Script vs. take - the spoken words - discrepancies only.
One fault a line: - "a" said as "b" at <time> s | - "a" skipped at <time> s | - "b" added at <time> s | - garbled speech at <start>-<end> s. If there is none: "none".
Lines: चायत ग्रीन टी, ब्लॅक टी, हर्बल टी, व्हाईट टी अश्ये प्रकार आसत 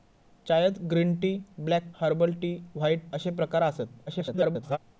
- "टी" skipped at 1.9 s
- "टी" skipped at 3.1 s
- garbled speech at 4.1-4.8 s